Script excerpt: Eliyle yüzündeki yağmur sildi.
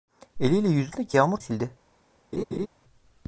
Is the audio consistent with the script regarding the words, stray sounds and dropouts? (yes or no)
no